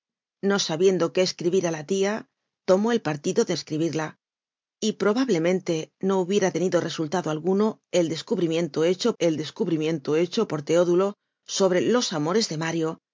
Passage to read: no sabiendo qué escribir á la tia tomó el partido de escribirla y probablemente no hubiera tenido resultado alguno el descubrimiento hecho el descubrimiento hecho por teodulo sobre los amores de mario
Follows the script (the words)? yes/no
yes